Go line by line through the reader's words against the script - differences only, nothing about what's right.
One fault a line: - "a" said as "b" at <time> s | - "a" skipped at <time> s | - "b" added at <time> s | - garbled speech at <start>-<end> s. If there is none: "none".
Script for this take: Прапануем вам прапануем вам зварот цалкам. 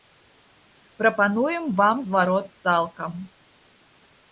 - "прапануем вам" skipped at 2.0 s